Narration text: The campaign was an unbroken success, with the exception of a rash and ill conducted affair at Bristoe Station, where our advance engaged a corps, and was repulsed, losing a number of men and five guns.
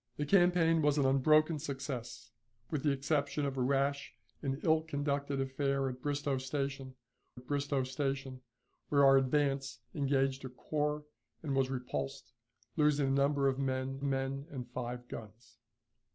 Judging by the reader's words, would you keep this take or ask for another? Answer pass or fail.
fail